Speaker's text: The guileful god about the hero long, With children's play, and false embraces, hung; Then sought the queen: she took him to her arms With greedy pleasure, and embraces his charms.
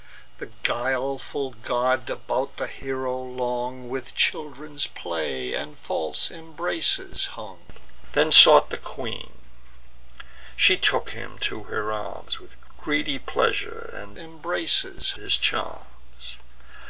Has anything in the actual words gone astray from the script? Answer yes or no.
no